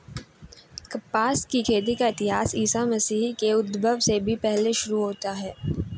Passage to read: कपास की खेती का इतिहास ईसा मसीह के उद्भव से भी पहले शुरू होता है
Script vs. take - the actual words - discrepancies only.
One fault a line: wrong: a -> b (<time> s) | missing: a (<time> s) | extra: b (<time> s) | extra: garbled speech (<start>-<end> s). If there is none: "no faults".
no faults